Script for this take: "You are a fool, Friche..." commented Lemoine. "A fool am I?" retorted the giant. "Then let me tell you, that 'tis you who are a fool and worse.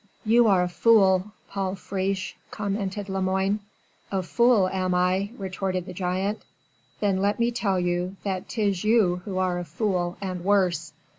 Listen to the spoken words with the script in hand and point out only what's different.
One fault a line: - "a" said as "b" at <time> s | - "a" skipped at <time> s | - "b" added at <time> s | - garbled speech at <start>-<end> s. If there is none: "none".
- "Paul" added at 1.5 s